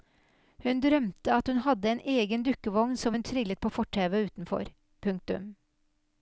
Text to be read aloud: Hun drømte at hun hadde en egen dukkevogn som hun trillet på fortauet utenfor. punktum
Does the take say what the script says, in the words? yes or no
yes